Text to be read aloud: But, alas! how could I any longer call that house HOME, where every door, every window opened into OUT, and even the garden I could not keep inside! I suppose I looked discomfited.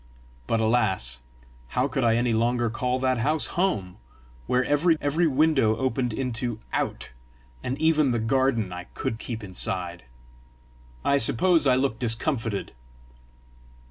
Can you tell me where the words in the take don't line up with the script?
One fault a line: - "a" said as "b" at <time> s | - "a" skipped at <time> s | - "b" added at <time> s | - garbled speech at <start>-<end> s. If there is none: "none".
- "door" skipped at 5.0 s
- "not" skipped at 9.2 s